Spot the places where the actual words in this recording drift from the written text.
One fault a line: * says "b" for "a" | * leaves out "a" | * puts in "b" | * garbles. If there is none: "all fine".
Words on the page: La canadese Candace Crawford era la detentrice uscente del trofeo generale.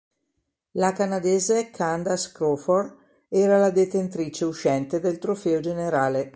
all fine